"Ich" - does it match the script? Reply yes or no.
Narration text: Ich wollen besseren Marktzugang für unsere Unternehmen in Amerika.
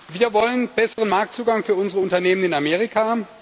no